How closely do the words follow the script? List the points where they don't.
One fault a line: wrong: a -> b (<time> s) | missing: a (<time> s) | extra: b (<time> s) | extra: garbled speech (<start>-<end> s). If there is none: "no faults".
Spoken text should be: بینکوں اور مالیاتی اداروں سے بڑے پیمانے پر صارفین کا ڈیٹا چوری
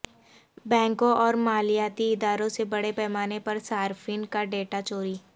no faults